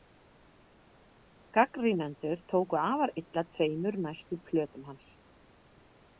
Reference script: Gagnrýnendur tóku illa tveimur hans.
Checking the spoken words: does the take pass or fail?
fail